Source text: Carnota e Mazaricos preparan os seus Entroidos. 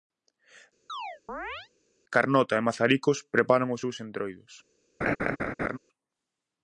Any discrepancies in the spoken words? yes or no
no